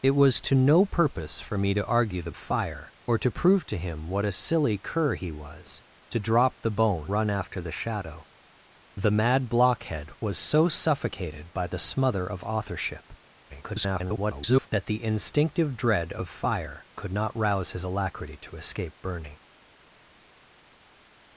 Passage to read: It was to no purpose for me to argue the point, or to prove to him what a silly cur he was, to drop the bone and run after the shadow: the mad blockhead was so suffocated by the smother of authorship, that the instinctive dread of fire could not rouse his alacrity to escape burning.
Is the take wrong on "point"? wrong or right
wrong